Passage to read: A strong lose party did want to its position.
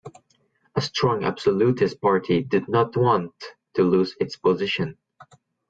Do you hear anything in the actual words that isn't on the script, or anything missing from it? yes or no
yes